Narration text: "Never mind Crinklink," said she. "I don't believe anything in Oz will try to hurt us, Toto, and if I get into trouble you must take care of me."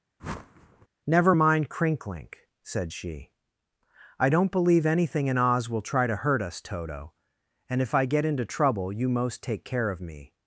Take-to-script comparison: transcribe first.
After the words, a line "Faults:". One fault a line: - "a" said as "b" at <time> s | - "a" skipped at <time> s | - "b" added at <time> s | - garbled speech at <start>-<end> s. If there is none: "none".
"Never mind Crinklink," said she. "I don't believe anything in Oz will try to hurt us, Toto, and if I get into trouble you most take care of me."
Faults:
- "must" said as "most" at 9.1 s